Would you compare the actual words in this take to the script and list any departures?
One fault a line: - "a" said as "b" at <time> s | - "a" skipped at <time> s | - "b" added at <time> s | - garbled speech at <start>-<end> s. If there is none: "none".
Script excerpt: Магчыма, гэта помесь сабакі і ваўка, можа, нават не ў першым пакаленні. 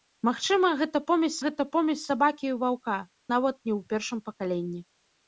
- "гэта помесь" added at 1.4 s
- "можа" skipped at 3.0 s